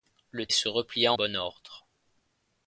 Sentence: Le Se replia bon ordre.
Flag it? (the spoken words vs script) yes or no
no